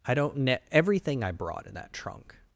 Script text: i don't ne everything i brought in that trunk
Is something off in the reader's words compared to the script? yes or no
no